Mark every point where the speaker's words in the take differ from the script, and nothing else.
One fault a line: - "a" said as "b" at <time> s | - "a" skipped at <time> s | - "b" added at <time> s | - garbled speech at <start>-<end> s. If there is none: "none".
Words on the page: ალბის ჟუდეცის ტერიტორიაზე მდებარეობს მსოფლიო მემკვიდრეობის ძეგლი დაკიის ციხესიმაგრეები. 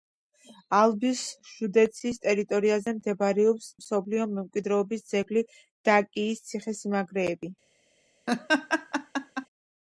none